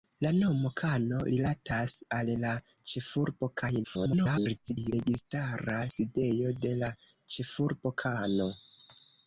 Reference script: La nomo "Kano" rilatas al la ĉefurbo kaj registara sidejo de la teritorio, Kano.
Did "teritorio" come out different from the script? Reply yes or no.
yes